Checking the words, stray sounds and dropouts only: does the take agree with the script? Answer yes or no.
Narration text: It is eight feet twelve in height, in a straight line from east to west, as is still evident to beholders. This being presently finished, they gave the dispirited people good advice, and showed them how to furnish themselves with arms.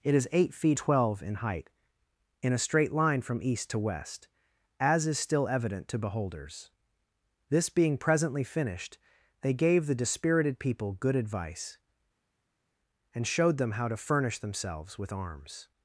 yes